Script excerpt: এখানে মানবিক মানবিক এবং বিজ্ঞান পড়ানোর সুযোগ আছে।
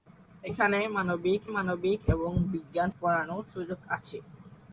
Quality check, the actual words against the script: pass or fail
pass